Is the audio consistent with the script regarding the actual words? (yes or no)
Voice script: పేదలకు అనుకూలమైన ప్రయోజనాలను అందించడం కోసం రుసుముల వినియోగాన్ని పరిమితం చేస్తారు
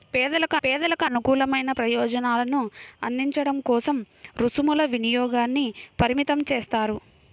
no